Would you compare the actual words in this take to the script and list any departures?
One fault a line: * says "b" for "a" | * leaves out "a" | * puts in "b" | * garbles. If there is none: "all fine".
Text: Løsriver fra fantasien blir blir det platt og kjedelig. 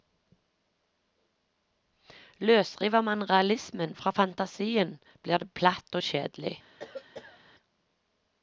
* puts in "man realismen"
* leaves out "blir"